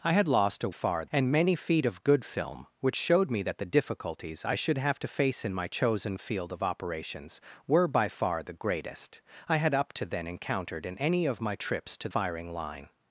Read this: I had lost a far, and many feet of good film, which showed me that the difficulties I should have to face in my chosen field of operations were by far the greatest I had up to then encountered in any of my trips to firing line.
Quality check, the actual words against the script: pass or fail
pass